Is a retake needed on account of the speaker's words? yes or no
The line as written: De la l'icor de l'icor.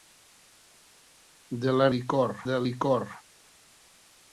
no